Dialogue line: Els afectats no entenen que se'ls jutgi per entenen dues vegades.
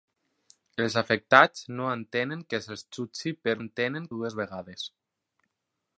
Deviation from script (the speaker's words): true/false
false